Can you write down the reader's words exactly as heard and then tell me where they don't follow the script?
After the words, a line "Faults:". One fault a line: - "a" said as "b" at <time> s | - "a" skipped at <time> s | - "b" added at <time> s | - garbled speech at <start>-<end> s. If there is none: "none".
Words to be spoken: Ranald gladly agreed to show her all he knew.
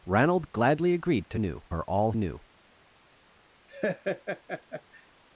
Ranald gladly agreed to knew her all knew.
Faults:
- "show" said as "knew" at 1.4 s
- "he" skipped at 2.1 s